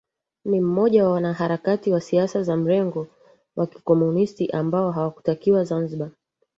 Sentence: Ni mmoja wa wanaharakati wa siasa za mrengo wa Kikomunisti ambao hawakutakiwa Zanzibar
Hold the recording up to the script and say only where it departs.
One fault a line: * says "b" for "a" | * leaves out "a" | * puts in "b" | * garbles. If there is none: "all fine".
all fine